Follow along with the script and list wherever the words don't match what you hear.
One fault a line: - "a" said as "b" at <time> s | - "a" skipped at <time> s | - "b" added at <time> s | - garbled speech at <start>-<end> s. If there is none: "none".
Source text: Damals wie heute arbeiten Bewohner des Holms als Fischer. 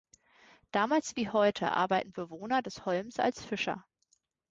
none